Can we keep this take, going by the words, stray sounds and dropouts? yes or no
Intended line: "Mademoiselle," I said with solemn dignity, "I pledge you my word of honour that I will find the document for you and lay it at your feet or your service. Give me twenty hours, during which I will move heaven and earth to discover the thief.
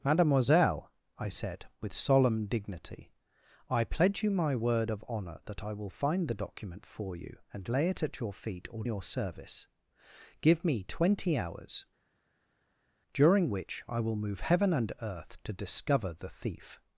yes